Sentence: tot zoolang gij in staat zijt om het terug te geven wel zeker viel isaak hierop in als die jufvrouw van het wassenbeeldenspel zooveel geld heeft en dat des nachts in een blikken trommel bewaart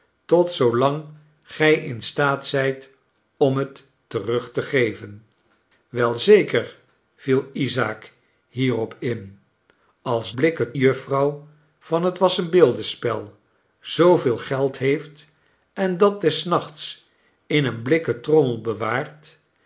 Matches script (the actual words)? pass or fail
fail